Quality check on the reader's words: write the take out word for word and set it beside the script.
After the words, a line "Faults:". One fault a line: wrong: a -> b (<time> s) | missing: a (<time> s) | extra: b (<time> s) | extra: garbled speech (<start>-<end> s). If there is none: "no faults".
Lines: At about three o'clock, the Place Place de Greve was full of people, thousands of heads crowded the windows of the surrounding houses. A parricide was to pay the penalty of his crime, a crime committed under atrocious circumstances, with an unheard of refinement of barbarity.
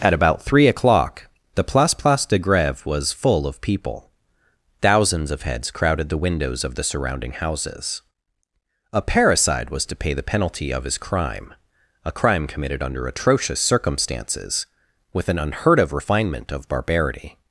At about three o'clock, the Place Place de Greve was full of people, thousands of heads crowded the windows of the surrounding houses. A parricide was to pay the penalty of his crime, a crime committed under atrocious circumstances, with an unheard of refinement of barbarity.
Faults:
no faults